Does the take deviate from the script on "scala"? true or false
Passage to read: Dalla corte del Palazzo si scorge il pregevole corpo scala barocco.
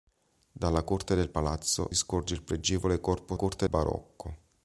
true